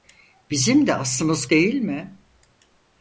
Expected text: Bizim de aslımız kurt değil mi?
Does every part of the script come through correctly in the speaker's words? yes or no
no